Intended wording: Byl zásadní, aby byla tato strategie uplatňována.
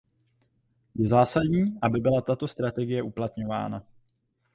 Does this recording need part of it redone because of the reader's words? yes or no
yes